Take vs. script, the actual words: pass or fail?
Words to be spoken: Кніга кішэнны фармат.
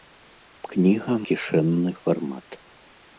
pass